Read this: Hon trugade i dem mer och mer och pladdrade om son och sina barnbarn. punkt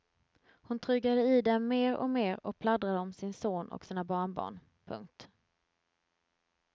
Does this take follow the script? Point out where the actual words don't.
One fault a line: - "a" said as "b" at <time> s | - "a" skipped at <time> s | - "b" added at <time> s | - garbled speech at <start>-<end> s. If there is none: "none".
- "sin" added at 3.1 s